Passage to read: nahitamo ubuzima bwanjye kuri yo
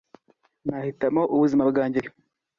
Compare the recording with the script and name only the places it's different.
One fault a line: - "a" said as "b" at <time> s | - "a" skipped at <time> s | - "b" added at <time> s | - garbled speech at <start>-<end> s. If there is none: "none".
- "kuri" skipped at 2.0 s